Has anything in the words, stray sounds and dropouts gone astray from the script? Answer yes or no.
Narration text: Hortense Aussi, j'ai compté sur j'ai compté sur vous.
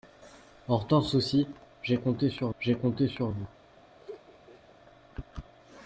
yes